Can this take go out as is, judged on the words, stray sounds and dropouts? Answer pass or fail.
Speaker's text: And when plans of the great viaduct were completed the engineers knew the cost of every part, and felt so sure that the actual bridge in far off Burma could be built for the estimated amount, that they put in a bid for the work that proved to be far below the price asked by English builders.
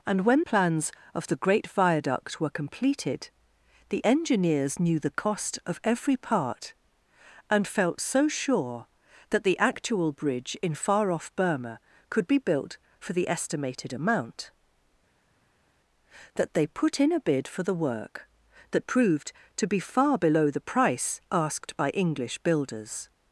pass